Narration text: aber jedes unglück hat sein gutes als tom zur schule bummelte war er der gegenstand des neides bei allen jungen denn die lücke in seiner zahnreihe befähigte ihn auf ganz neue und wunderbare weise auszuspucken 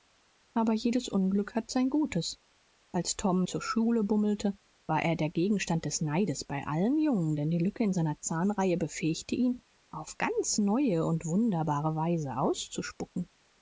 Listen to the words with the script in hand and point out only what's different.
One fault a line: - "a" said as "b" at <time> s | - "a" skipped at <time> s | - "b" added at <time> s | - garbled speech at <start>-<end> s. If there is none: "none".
none